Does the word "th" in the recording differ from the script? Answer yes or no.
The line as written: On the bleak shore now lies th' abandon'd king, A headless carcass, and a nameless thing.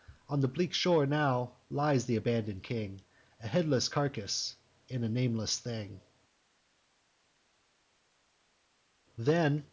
no